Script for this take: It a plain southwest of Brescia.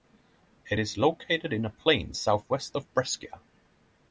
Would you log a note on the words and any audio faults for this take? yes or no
yes